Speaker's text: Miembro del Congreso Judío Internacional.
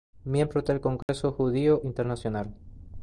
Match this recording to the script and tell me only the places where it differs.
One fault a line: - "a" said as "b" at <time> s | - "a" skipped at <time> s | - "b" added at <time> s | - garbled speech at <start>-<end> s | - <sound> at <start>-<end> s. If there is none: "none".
- dropout at 1.0-1.1 s